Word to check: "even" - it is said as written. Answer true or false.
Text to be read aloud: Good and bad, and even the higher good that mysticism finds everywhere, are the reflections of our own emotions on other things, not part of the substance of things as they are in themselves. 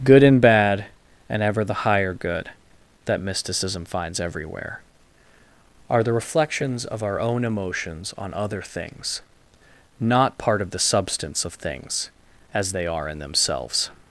false